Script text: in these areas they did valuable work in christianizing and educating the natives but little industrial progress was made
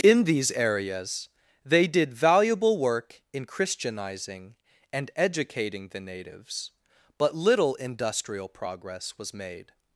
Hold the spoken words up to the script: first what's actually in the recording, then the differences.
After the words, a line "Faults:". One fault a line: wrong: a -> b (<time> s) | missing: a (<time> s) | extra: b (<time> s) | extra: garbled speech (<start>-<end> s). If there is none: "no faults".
in these areas they did valuable work in christianizing and educating the natives but little industrial progress was made
Faults:
no faults